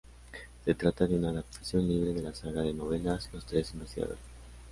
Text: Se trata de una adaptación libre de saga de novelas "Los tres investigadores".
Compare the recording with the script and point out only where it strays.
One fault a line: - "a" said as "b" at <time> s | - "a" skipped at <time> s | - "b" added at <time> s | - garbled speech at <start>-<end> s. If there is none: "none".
- "la" added at 2.2 s